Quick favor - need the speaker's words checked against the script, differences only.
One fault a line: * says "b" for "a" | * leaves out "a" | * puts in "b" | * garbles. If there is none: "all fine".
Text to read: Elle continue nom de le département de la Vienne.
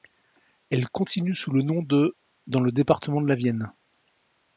* puts in "sous le"
* puts in "dans"